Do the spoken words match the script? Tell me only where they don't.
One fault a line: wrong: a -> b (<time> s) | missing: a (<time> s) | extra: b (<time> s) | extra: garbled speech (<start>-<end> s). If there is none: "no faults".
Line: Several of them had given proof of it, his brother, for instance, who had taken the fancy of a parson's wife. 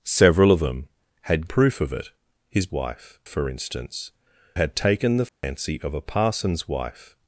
missing: given (1.5 s)
wrong: brother -> wife (2.7 s)
missing: who (4.1 s)